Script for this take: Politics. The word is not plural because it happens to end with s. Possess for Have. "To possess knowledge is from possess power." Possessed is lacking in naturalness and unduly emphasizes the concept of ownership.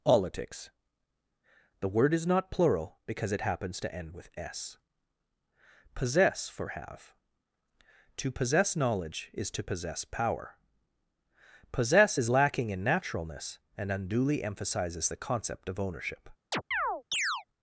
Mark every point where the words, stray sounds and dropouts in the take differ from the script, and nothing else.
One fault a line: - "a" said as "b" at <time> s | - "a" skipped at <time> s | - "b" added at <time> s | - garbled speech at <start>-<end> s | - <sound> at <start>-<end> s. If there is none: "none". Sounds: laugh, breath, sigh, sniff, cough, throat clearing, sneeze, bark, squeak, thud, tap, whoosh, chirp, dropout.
- "from" said as "to" at 9.5 s
- "Possessed" said as "Possess" at 11.7 s
- chirp at 16.5-17.4 s